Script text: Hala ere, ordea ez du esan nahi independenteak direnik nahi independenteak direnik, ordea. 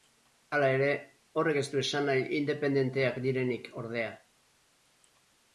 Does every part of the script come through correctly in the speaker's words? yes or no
no